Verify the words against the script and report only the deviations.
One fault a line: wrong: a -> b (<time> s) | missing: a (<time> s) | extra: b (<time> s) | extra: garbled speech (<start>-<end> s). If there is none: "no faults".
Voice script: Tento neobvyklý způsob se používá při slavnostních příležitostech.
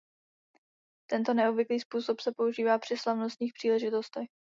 no faults